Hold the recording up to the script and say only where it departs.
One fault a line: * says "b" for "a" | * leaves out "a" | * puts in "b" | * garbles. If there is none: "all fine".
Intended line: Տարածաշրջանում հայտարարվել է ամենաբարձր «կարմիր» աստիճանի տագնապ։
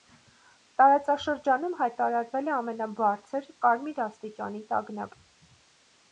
all fine